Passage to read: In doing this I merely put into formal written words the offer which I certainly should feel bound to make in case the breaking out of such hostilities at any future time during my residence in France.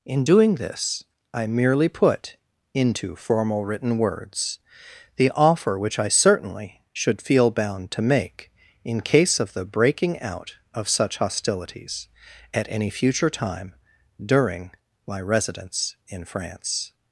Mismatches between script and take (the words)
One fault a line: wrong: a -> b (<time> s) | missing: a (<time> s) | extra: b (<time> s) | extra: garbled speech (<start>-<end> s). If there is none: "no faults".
extra: of (9.4 s)